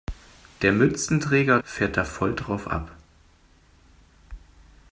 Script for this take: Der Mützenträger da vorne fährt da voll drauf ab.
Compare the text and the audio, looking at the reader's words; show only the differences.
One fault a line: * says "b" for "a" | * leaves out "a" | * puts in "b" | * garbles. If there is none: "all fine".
* leaves out "da vorne"